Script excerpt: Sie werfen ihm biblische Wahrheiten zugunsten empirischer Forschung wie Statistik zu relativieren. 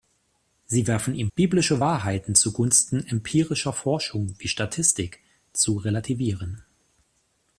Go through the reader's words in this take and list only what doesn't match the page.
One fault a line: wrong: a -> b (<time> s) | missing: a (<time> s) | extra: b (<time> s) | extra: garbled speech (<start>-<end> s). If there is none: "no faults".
no faults